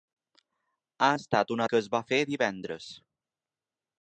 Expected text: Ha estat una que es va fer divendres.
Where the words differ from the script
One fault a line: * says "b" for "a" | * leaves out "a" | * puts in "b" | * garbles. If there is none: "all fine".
all fine